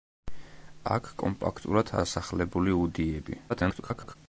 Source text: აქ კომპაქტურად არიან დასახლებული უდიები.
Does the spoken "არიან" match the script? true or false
false